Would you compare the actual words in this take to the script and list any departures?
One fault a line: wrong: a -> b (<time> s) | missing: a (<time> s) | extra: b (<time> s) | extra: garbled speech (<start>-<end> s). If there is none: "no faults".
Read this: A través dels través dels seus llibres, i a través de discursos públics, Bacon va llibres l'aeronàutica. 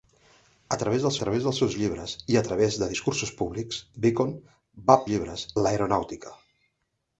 no faults